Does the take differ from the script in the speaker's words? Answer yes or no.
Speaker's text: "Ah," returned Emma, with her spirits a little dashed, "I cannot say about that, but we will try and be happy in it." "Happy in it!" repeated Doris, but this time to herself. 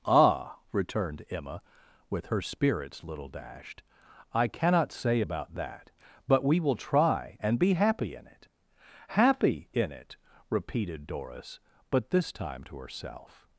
yes